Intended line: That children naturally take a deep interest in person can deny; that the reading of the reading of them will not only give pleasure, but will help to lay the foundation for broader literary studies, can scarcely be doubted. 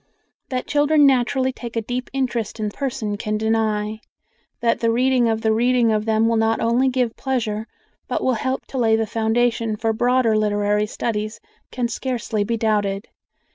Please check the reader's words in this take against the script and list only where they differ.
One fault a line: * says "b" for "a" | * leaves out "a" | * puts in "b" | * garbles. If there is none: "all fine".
all fine